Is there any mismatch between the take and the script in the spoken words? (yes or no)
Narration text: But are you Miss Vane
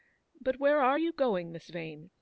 yes